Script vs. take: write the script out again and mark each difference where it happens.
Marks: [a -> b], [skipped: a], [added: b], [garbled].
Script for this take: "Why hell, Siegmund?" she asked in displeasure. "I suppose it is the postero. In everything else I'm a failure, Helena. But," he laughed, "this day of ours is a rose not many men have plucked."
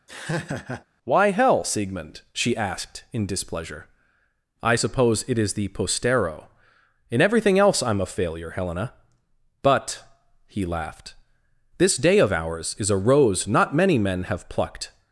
"Why hell, Siegmund?" she asked in displeasure. "I suppose it is the postero. In everything else I'm a failure, Helena. But," he laughed, "this day of ours is a rose not many men have plucked."